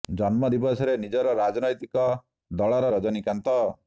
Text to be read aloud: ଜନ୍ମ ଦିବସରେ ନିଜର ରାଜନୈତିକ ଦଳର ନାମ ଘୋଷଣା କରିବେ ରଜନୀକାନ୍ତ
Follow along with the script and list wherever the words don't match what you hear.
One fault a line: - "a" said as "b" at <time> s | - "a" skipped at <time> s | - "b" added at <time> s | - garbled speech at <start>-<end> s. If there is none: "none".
- "ନାମ ଘୋଷଣା କରିବେ" skipped at 2.9 s